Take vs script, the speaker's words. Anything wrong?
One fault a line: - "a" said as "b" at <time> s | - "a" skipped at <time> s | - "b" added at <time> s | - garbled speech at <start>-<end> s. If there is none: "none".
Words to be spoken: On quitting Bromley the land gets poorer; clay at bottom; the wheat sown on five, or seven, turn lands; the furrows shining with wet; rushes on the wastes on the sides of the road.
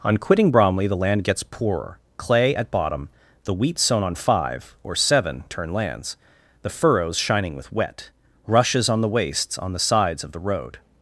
none